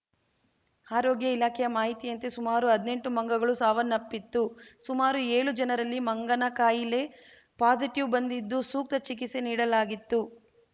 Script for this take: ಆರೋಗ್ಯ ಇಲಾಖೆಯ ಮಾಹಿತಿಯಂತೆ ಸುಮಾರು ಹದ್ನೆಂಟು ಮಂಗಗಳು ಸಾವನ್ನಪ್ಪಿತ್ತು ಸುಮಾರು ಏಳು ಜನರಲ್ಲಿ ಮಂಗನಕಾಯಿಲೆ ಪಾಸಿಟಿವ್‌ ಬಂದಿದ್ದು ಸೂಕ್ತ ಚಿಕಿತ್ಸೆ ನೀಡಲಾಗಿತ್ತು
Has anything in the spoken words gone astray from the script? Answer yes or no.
no